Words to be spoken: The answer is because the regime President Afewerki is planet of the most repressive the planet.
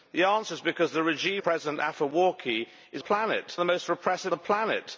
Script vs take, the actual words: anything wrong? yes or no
no